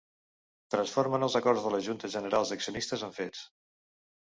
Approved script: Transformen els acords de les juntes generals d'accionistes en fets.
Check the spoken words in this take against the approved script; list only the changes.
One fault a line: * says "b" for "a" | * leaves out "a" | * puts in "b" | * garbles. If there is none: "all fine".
all fine